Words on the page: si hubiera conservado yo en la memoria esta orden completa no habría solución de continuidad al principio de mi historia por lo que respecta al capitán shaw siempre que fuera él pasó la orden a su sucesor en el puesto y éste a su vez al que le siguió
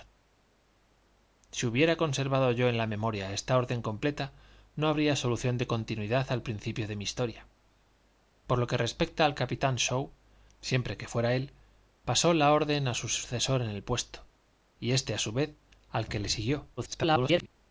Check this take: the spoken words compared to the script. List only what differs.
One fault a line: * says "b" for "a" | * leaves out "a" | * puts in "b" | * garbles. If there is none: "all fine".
* garbles